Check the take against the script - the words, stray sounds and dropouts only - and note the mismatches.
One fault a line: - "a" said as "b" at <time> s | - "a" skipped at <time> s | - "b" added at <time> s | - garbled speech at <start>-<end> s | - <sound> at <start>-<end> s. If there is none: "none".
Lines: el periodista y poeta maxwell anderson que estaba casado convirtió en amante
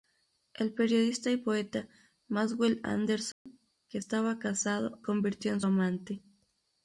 - dropout at 3.3-3.5 s